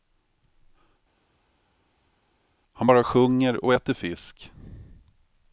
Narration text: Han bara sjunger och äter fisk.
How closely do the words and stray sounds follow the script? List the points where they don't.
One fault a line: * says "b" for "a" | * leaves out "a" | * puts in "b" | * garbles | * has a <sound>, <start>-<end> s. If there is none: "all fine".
all fine